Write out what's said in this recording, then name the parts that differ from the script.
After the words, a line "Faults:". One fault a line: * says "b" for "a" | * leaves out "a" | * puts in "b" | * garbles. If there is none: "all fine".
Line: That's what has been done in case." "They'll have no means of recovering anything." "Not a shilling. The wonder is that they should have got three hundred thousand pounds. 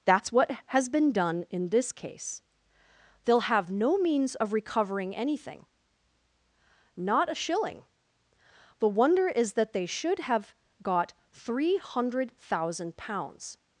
That's what has been done in this case." "They'll have no means of recovering anything." "Not a shilling. The wonder is that they should have got three hundred thousand pounds.
Faults:
* puts in "this"